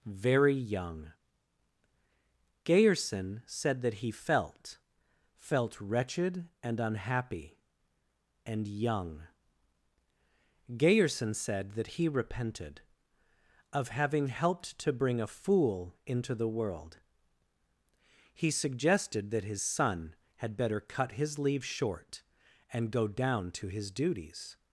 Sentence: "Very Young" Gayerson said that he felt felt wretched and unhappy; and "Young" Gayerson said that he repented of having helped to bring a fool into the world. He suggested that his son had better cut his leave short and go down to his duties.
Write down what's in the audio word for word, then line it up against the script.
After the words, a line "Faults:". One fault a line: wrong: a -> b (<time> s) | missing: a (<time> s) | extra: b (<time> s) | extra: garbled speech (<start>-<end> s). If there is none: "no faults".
"Very Young" Gayerson said that he felt felt wretched and unhappy; and "Young" Gayerson said that he repented of having helped to bring a fool into the world. He suggested that his son had better cut his leave short and go down to his duties.
Faults:
no faults